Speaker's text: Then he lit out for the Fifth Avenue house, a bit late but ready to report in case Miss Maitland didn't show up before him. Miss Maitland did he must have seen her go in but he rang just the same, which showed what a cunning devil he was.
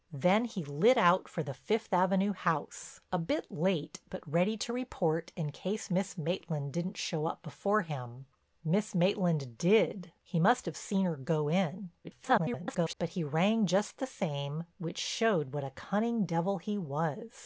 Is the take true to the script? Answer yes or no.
no